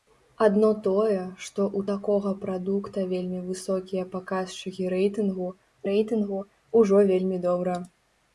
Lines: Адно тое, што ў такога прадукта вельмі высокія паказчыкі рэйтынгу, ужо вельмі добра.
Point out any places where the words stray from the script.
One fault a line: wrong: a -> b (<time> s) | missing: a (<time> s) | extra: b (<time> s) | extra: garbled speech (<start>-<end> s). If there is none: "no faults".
extra: рэйтынгу (5.9 s)